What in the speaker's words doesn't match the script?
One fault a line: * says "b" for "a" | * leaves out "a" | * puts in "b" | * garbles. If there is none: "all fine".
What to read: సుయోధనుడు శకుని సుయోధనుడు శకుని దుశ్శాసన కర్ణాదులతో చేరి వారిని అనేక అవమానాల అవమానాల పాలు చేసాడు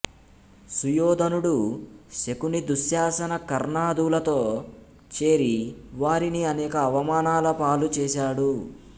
* leaves out "సుయోధనుడు శకుని"
* leaves out "అవమానాల"